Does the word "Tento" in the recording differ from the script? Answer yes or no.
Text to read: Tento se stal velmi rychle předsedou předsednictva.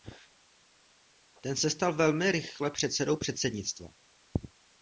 yes